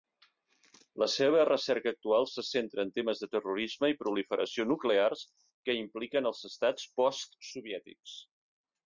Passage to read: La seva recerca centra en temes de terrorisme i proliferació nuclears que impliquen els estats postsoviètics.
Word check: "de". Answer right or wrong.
right